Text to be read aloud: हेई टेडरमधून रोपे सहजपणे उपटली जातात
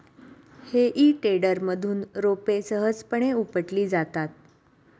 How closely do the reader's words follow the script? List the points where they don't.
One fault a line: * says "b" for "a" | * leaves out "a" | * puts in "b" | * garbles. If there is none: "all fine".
all fine